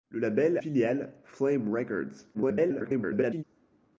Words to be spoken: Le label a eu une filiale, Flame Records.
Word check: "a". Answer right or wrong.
wrong